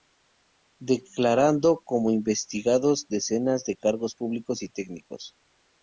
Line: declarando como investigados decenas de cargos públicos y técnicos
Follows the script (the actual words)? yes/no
yes